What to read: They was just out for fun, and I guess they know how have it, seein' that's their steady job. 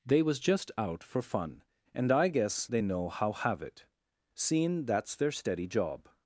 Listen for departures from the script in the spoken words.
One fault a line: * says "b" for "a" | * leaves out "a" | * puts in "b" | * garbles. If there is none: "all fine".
all fine